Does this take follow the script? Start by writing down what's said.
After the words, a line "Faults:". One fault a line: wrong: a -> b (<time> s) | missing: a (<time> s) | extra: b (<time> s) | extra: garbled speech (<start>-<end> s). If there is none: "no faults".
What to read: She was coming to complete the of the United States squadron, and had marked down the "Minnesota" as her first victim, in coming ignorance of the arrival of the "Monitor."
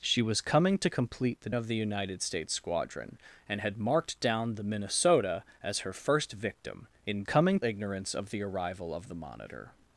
She was coming to complete the of the United States squadron, and had marked down the "Minnesota" as her first victim, in coming ignorance of the arrival of the "Monitor."
Faults:
no faults